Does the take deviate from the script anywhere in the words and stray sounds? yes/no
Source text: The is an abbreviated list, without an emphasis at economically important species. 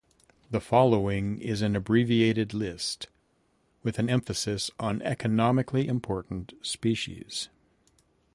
yes